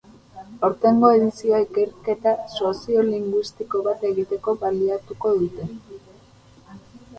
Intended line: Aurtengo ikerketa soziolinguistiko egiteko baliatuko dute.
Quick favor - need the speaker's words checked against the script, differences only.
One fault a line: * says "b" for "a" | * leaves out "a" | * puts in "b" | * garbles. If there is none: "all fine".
* puts in "edizioa"
* puts in "bat"